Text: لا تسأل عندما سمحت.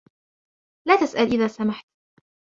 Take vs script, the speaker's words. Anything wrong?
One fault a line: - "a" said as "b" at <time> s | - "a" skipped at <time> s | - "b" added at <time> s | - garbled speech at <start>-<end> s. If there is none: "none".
- "عندما" said as "إذا" at 1.3 s